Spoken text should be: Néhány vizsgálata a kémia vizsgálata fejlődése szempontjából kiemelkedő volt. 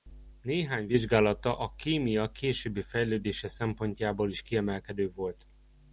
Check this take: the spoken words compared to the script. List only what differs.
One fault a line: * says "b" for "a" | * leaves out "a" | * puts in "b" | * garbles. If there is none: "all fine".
* says "későbbi" for "vizsgálata"
* puts in "is"